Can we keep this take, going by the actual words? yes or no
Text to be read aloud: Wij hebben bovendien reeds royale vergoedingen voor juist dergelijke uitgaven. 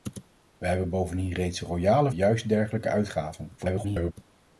no